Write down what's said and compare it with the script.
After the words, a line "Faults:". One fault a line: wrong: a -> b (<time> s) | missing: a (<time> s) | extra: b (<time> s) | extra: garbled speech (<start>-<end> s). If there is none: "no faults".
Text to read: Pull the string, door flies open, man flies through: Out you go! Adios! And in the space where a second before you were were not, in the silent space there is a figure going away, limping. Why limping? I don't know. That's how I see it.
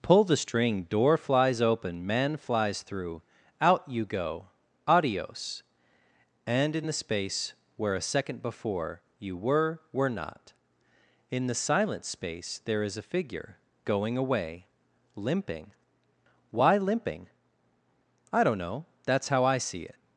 Pull the string, door flies open, man flies through: Out you go! Adios! And in the space where a second before you were were not, in the silent space there is a figure going away, limping. Why limping? I don't know. That's how I see it.
Faults:
no faults